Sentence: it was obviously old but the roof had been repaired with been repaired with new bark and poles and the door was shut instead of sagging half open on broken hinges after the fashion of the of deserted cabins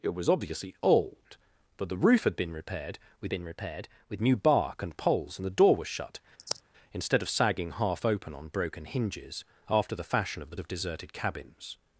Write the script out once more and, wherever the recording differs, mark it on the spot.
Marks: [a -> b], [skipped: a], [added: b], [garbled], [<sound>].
it was obviously old but the roof had been repaired with been repaired with new bark and poles and the door was shut [sigh] instead of sagging half open on broken hinges after the fashion of the of deserted cabins